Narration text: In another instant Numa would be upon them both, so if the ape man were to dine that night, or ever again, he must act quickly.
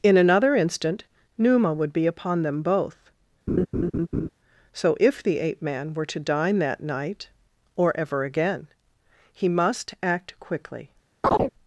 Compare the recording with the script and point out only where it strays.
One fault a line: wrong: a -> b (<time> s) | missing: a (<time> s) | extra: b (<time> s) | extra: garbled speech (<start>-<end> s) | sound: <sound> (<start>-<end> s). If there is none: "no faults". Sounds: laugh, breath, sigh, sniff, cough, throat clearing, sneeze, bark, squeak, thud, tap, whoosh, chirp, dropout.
sound: laugh (3.5-4.3 s)
sound: chirp (11.2-11.5 s)